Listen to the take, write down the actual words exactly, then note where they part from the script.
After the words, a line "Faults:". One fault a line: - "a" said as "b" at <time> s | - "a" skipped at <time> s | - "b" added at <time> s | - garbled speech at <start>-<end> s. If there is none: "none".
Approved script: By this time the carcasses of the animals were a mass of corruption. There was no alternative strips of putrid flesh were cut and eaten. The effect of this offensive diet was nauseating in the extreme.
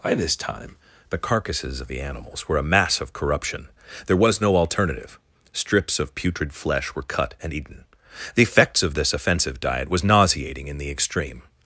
By this time the carcasses of the animals were a mass of corruption. There was no alternative strips of putrid flesh were cut and eaten. The effects of this offensive diet was nauseating in the extreme.
Faults:
- "effect" said as "effects" at 8.4 s